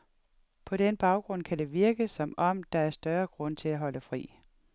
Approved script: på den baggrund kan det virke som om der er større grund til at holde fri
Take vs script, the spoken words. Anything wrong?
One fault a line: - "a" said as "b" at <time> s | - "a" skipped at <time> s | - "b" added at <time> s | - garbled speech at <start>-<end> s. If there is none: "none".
none